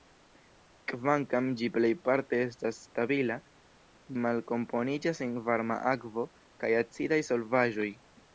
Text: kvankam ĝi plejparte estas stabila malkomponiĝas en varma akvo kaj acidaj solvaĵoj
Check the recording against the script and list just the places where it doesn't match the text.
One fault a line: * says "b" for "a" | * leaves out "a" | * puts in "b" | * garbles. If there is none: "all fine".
all fine